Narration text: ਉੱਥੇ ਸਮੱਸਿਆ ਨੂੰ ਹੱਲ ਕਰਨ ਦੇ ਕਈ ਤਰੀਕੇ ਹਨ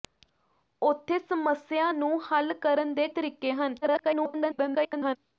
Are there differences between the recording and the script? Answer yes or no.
yes